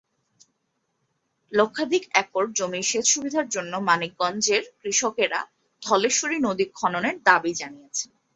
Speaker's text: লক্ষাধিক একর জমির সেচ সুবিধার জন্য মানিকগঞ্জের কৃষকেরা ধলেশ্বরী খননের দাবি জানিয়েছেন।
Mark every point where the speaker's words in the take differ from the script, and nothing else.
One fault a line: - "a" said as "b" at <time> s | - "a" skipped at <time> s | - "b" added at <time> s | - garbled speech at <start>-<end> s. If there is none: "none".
- "নদী" added at 6.5 s